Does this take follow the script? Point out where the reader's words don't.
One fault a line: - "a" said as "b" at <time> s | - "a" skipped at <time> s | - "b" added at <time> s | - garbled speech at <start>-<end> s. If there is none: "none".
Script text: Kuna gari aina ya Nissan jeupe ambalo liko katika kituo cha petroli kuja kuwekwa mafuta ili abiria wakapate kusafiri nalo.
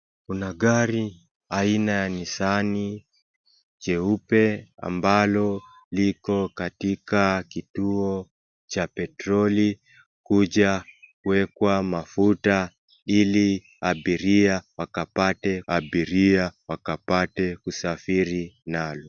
- "abiria wakapate" added at 15.7 s